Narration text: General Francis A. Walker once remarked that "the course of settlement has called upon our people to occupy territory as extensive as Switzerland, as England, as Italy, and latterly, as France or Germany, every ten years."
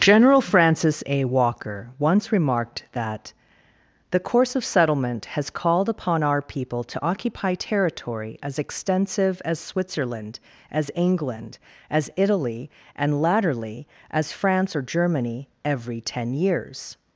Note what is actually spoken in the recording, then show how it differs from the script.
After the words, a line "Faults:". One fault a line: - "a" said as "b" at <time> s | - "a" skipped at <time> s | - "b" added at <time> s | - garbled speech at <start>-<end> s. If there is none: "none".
General Francis A. Walker once remarked that "the course of settlement has called upon our people to occupy territory as extensive as Switzerland, as England, as Italy, and latterly, as France or Germany, every ten years."
Faults:
none